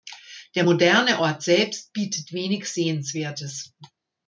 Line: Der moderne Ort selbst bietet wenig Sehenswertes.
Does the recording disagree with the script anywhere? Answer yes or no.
no